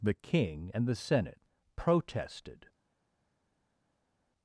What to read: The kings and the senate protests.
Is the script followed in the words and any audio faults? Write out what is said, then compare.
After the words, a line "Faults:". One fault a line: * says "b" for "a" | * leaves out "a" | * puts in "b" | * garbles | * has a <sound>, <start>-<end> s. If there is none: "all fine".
The king and the senate protested.
Faults:
* says "king" for "kings"
* says "protested" for "protests"